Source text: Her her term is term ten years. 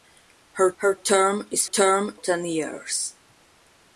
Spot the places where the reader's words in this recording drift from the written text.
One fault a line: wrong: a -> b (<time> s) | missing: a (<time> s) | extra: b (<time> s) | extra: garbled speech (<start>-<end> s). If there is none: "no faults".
no faults